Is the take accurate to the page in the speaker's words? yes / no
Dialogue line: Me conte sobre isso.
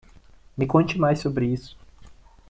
no